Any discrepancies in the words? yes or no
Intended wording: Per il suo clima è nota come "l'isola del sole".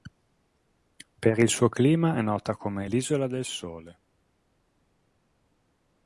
no